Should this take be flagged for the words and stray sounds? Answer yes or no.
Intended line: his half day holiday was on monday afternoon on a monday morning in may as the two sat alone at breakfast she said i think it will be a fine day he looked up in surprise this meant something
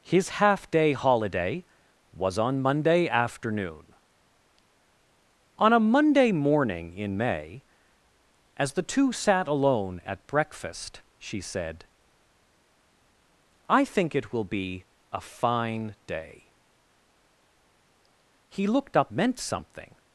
yes